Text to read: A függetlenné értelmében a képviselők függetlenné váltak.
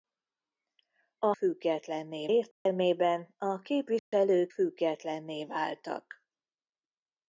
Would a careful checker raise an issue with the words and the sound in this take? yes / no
yes